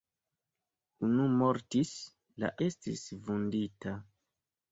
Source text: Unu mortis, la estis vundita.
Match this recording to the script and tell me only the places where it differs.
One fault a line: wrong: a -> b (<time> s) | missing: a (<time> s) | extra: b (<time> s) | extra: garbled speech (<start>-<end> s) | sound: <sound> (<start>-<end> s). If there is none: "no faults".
no faults